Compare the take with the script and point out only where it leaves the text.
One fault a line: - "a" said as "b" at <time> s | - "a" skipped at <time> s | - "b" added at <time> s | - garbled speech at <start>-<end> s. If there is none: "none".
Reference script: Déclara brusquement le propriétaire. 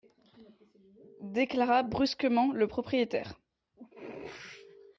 none